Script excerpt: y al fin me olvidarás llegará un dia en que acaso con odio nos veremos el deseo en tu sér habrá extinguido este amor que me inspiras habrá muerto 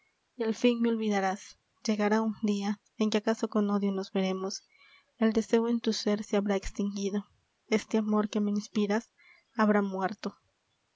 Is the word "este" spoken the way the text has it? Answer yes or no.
yes